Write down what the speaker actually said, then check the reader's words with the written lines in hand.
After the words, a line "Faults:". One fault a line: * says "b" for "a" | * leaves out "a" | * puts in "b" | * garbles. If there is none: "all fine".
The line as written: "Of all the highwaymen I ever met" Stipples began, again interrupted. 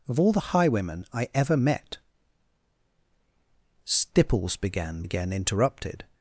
"Of all the highwaymen I ever met" Stipples began, again interrupted.
Faults:
all fine